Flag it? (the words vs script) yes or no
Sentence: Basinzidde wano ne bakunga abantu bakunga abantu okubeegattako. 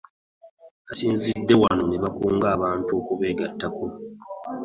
yes